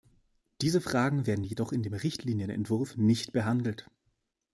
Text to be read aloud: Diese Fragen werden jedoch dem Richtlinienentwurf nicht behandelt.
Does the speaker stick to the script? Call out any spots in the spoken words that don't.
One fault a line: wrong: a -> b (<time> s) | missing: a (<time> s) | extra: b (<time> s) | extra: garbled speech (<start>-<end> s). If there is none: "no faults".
extra: in (1.7 s)